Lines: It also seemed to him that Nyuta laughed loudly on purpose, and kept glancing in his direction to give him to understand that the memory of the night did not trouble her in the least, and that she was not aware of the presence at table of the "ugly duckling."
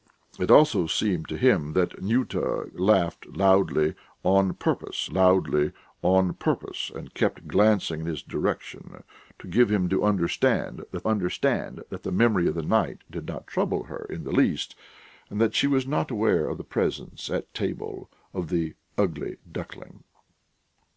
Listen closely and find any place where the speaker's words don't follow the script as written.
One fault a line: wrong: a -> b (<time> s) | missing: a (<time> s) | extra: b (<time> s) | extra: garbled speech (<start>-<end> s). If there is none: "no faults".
extra: loudly on purpose (5.1 s)
extra: understand that (11.1 s)